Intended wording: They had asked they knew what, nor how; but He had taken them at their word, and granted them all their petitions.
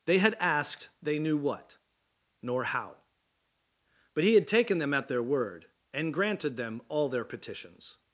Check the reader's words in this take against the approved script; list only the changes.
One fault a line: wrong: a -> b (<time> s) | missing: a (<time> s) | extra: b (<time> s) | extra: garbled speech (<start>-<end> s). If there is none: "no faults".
no faults